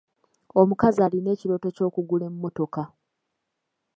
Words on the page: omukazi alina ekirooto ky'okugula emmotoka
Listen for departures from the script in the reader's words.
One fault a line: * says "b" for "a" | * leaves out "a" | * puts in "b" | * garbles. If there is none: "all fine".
all fine